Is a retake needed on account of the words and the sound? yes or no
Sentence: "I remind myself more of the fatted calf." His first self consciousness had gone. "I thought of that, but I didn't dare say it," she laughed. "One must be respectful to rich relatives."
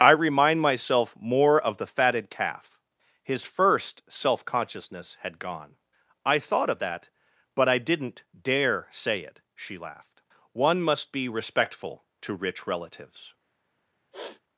yes